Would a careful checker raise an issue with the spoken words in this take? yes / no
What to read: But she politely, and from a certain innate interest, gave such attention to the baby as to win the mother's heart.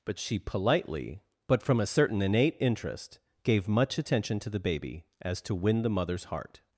yes